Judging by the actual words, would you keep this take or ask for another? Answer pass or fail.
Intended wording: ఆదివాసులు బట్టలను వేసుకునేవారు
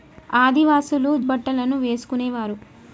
pass